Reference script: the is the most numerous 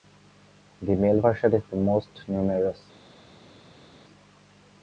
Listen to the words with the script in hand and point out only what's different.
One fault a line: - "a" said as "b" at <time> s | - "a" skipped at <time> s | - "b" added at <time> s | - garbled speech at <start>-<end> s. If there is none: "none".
- "male version" added at 0.9 s